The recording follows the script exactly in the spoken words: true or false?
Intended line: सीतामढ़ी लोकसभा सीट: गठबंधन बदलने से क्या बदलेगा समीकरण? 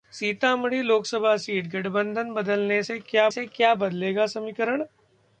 false